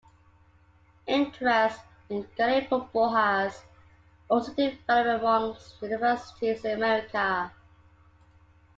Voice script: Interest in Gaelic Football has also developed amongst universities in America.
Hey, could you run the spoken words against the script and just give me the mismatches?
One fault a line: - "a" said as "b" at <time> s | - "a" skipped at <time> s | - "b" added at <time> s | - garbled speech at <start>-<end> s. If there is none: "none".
none